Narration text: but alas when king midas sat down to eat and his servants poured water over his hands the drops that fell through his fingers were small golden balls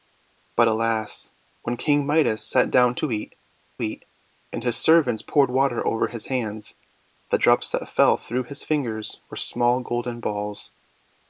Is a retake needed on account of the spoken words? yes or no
yes